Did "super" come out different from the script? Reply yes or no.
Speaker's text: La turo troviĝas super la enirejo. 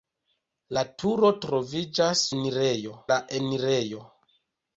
yes